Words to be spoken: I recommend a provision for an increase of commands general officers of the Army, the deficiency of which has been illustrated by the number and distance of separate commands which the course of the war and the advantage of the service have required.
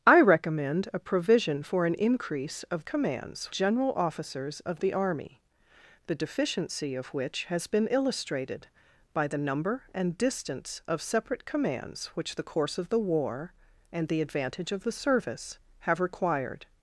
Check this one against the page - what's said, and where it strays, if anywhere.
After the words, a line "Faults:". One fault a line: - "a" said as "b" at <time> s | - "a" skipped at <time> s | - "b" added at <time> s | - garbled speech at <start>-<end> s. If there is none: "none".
I recommend a provision for an increase of commands general officers of the Army, the deficiency of which has been illustrated by the number and distance of separate commands which the course of the war and the advantage of the service have required.
Faults:
none